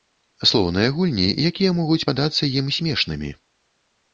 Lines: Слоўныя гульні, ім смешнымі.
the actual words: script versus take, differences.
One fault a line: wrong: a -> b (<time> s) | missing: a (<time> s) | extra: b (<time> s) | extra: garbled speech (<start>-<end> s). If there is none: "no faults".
extra: якія могуць падацца (1.5 s)